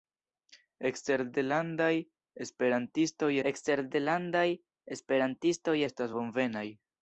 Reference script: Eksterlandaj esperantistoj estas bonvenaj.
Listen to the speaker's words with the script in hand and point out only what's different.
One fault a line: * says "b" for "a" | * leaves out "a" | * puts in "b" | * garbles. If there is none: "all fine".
* puts in "eksterlandaj esperantistoj"